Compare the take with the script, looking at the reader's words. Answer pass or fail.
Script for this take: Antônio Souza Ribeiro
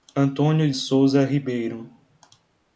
pass